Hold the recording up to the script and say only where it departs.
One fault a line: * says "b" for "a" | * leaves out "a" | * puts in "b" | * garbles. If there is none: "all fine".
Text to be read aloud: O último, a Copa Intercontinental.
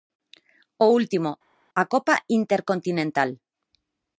all fine